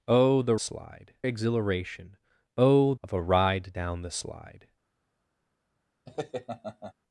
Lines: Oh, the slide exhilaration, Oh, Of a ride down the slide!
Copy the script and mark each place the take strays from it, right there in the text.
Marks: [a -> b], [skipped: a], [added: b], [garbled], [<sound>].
Oh, the slide exhilaration, Oh, Of a ride down the slide! [laugh]